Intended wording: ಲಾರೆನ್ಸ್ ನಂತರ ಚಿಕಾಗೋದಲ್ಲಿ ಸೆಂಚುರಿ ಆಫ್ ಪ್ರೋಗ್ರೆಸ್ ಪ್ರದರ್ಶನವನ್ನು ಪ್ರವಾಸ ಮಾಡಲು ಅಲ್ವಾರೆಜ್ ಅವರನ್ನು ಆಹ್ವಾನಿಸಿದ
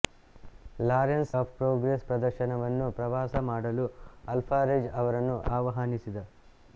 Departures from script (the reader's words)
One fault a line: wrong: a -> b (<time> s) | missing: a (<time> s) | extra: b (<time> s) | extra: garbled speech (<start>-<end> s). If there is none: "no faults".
missing: ನಂತರ ಚಿಕಾಗೋದಲ್ಲಿ ಸೆಂಚುರಿ (1.3 s)